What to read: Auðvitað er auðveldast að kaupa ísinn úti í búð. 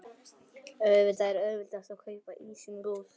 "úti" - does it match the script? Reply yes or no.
no